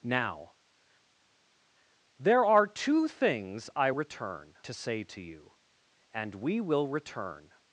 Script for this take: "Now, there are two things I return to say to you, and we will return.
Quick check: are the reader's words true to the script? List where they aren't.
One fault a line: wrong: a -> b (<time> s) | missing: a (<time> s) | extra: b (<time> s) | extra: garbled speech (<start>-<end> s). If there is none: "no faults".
no faults